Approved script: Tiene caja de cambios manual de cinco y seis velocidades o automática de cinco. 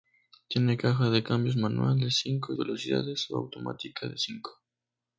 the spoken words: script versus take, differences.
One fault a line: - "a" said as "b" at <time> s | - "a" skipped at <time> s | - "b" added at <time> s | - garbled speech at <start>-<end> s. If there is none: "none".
- "seis" skipped at 2.6 s